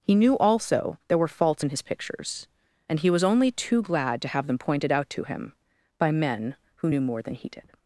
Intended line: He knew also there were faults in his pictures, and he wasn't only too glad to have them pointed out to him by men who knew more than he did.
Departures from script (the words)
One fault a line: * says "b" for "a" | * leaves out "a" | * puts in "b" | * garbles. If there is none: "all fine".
* says "was" for "wasn't"